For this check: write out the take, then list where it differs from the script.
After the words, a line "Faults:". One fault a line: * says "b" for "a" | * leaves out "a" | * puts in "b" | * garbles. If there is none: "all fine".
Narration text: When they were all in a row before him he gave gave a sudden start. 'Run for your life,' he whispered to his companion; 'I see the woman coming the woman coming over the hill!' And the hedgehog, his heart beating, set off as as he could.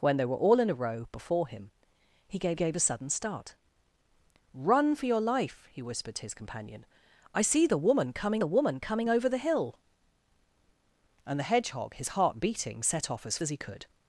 When they were all in a row before him he gave gave a sudden start. 'Run for your life,' he whispered to his companion; 'I see the woman coming the woman coming over the hill!' And the hedgehog, his heart beating, set off as as he could.
Faults:
all fine